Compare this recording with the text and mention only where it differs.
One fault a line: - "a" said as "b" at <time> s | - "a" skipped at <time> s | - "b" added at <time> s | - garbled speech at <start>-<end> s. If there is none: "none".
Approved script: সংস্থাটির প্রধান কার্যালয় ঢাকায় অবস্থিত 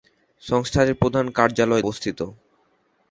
- "ঢাকায়" skipped at 1.8 s